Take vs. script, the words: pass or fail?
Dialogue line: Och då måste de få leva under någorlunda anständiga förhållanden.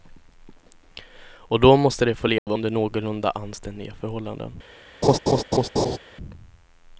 pass